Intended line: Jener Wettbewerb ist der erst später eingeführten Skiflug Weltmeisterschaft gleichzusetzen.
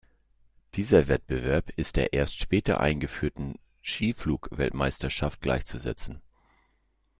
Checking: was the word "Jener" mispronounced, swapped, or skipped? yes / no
yes